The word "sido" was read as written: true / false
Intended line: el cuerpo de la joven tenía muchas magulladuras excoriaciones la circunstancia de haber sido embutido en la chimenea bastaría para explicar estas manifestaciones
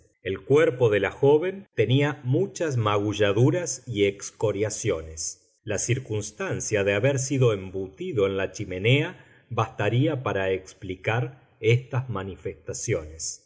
true